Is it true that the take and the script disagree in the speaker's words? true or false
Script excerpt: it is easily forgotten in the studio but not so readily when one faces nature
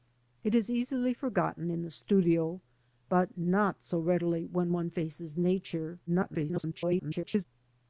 true